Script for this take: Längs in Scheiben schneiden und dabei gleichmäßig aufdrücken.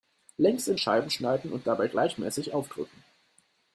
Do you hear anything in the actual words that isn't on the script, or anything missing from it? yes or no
no